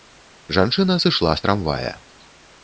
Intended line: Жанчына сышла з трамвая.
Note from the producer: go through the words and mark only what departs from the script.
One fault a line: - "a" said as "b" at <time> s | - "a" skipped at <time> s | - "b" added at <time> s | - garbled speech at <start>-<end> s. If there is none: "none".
none